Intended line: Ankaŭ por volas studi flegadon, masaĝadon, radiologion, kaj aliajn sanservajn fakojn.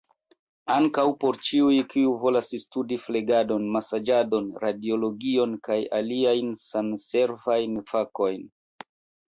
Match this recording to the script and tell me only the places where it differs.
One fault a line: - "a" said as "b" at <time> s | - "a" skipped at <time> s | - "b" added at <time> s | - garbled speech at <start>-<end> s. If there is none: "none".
- "ĉiuj kiuj" added at 1.5 s